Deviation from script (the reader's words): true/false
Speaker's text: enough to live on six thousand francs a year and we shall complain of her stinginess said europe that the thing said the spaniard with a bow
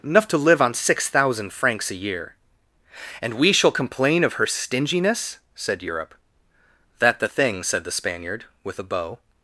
false